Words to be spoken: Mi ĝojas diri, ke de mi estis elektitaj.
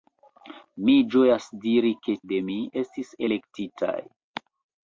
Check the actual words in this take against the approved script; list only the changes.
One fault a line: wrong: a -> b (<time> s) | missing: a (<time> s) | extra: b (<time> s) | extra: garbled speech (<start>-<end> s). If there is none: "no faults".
no faults